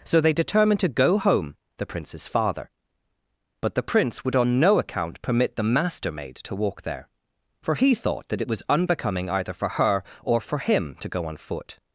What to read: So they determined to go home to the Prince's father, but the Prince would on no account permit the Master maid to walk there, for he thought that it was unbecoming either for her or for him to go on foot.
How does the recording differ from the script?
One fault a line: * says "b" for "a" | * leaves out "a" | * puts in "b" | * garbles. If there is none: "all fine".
* leaves out "to"